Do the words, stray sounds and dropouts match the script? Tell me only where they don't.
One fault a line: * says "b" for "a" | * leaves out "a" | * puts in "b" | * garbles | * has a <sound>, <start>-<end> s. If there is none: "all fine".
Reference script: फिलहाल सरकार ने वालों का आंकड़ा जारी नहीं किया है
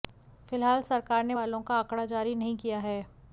all fine